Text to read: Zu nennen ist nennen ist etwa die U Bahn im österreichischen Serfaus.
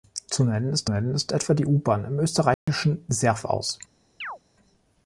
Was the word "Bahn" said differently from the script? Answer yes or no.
no